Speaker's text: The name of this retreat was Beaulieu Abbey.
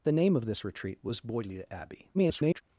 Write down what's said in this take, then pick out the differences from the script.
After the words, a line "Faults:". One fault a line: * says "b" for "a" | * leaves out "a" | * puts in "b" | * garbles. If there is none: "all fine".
The name of this retreat was Beaulieu Abbey. [garbled]
Faults:
* garbles